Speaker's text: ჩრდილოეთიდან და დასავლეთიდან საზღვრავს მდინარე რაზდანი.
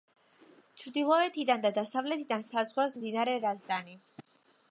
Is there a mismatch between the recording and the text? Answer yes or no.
no